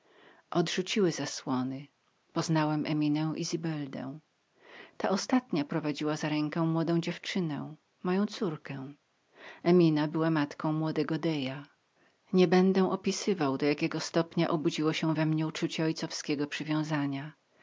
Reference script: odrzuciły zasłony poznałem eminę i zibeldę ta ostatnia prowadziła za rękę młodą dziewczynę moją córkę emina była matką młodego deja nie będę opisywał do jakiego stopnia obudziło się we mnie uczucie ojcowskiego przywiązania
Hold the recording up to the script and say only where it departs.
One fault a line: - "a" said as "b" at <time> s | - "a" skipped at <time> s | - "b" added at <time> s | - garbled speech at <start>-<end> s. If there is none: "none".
none